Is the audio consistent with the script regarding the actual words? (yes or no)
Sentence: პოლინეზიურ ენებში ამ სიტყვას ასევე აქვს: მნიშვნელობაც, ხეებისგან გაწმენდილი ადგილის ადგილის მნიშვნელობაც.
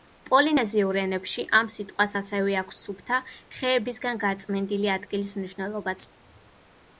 no